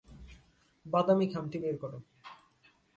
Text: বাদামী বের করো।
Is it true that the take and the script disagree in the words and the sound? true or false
true